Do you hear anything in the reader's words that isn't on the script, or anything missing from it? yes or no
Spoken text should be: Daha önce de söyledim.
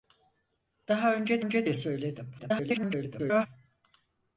yes